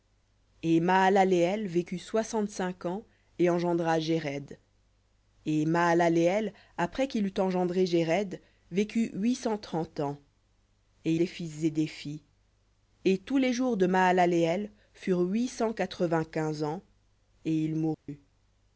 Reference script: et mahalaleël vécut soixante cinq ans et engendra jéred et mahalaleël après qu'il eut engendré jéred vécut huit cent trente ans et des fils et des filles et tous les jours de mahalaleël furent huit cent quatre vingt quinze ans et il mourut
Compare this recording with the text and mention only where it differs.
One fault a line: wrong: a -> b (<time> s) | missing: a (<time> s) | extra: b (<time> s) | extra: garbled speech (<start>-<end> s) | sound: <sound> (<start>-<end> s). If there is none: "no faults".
sound: dropout (17.9-18.1 s)